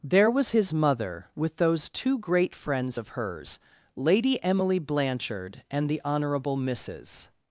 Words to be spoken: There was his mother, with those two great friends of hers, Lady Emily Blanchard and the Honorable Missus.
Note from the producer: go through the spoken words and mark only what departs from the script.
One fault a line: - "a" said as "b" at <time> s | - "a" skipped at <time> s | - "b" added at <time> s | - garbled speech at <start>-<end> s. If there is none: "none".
none